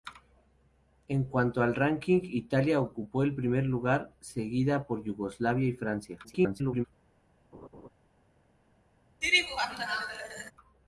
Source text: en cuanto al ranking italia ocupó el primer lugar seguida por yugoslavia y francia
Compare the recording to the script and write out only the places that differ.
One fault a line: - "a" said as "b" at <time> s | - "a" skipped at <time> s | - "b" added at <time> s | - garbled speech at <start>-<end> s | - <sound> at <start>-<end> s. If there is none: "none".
- garbled speech at 6.2-6.9 s
- laugh at 7.5-7.9 s
- laugh at 9.2-10.5 s